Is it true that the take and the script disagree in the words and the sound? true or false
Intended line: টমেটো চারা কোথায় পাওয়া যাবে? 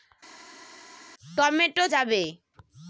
true